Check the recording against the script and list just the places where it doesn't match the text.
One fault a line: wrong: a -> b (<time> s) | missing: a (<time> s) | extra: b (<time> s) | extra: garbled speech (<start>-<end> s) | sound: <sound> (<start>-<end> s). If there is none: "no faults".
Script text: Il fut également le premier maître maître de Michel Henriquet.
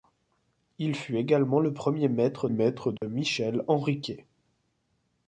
sound: dropout (3.0-3.0 s)